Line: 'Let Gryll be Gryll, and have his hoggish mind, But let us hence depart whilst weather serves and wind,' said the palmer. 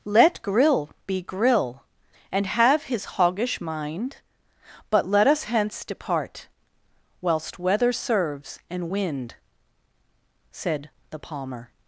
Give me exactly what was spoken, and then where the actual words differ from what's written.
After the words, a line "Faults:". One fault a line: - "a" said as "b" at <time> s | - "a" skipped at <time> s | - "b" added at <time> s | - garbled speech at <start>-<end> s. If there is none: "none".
'Let Gryll be Gryll, and have his hoggish mind, But let us hence depart whilst weather serves and wind,' said the palmer.
Faults:
none